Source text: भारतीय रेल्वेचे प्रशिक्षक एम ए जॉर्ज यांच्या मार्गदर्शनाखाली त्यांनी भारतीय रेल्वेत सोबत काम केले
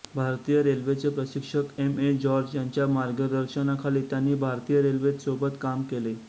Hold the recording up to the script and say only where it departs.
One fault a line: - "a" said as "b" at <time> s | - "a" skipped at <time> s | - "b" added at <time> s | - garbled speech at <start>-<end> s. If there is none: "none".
none